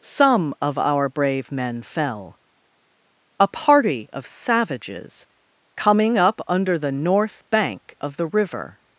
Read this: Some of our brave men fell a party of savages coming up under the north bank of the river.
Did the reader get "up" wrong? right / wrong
right